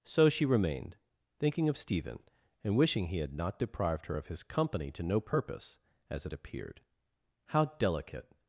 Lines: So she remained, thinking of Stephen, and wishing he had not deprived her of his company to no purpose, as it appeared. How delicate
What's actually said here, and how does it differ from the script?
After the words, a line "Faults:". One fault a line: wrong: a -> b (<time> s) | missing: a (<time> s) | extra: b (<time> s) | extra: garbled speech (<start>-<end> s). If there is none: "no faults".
So she remained, thinking of Stephen, and wishing he had not deprived her of his company to no purpose, as it appeared. How delicate
Faults:
no faults